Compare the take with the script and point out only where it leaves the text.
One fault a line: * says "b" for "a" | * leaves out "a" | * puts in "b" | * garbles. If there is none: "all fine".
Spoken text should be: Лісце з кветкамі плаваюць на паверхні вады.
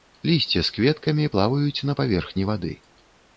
all fine